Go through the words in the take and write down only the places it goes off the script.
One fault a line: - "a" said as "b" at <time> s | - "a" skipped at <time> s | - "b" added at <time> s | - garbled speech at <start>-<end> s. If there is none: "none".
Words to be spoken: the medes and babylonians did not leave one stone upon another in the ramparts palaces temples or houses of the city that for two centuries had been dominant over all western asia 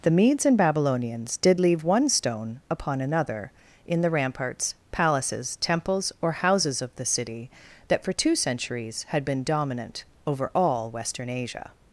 - "not" skipped at 1.6 s